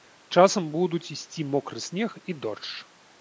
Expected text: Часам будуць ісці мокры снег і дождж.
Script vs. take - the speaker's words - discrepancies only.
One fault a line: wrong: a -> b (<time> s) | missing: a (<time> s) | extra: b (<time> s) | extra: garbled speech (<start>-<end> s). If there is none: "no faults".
no faults